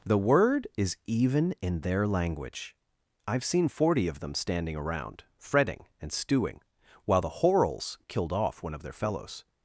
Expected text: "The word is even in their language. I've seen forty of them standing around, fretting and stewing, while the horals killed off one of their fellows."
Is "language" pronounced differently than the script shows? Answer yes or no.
no